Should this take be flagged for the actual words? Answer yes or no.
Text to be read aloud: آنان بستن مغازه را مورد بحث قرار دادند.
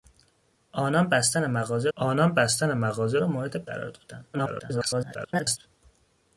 yes